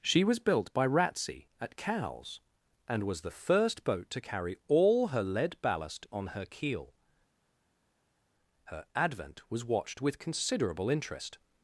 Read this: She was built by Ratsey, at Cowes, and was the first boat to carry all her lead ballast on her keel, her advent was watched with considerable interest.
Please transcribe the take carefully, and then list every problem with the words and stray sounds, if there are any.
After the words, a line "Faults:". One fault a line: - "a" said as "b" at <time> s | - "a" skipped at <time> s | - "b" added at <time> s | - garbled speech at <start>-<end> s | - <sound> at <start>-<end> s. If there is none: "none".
She was built by Ratsey, at Cowes, and was the first boat to carry all her lead ballast on her keel, her advent was watched with considerable interest.
Faults:
none